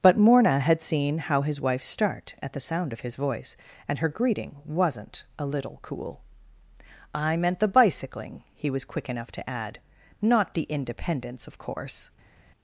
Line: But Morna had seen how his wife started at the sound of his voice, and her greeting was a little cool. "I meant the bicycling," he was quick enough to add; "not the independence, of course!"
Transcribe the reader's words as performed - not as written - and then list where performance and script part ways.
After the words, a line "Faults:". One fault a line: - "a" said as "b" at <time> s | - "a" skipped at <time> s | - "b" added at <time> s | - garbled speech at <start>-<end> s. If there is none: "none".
But Morna had seen how his wife start at the sound of his voice, and her greeting wasn't a little cool. "I meant the bicycling," he was quick enough to add; "not the independence, of course!"
Faults:
- "started" said as "start" at 1.8 s
- "was" said as "wasn't" at 4.7 s